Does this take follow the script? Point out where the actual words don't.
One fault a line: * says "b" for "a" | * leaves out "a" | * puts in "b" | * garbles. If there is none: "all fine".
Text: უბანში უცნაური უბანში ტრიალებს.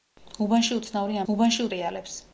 all fine